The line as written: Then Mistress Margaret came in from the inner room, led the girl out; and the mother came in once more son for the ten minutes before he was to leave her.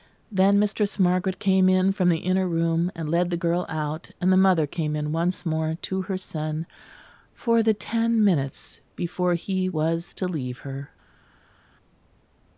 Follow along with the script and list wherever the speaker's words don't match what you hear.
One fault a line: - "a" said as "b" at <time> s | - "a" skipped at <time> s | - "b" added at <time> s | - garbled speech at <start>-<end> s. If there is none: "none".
- "and" added at 3.0 s
- "to her" added at 5.8 s